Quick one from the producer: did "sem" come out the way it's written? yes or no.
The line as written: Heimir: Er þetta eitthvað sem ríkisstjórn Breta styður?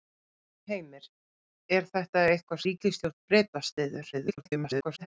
no